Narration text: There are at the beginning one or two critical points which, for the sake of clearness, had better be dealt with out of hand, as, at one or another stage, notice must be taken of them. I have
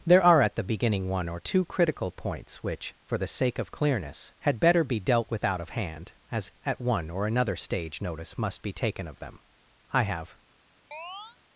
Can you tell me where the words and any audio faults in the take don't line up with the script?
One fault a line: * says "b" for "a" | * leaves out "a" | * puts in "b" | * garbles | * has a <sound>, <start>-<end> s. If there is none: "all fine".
* has a chirp, 10.9-11.4 s